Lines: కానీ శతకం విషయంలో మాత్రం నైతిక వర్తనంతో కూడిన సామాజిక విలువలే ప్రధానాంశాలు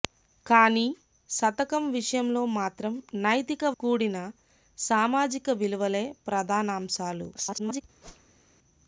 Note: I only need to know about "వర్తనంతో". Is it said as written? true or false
false